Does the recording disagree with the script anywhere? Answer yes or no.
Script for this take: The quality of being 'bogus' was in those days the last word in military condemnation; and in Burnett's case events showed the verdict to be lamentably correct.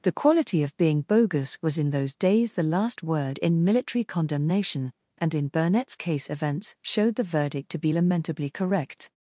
no